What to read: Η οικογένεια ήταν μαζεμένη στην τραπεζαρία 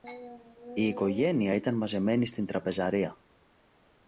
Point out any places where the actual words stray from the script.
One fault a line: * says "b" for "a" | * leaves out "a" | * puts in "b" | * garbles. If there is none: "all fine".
all fine